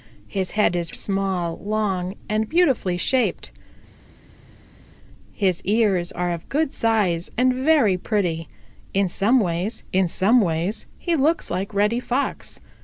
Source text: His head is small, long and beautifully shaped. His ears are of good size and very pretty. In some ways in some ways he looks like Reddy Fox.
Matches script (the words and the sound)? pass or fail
pass